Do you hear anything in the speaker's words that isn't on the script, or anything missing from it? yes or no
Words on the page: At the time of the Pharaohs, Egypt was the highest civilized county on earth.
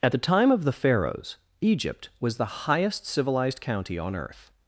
no